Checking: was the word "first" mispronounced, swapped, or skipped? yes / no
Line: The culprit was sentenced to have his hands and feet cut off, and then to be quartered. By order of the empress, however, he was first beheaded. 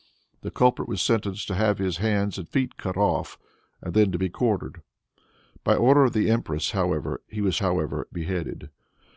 yes